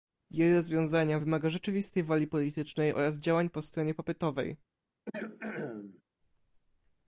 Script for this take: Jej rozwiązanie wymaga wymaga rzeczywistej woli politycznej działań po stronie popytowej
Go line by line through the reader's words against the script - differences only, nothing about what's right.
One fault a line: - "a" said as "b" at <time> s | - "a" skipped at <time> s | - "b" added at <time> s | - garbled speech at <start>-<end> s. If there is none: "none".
- "wymaga" skipped at 1.5 s
- "oraz" added at 2.9 s